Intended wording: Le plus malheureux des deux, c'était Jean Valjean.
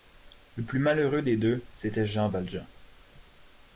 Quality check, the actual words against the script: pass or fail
pass